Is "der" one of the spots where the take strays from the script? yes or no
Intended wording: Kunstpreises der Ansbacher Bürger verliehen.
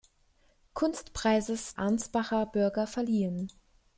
yes